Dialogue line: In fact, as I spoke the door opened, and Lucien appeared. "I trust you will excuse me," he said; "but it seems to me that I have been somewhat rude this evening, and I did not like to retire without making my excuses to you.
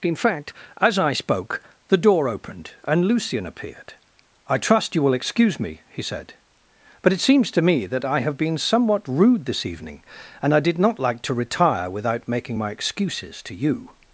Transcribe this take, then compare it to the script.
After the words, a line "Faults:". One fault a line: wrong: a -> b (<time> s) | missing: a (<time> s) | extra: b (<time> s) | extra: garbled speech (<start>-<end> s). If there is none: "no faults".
In fact, as I spoke the door opened, and Lucien appeared. "I trust you will excuse me," he said; "but it seems to me that I have been somewhat rude this evening, and I did not like to retire without making my excuses to you.
Faults:
no faults